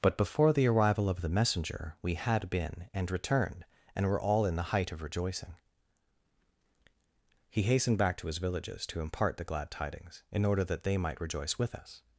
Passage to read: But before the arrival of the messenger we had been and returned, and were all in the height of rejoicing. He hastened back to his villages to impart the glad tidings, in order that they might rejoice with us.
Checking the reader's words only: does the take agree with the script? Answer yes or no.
yes